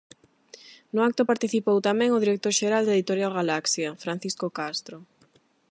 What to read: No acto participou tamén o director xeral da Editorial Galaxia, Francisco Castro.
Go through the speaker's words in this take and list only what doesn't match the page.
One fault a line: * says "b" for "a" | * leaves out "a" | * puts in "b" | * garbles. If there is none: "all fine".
all fine